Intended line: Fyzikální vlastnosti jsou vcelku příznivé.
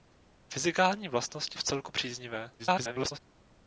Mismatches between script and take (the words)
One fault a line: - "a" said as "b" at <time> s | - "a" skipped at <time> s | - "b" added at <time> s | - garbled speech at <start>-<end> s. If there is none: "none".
- "jsou" skipped at 1.6 s
- garbled speech at 2.6-3.2 s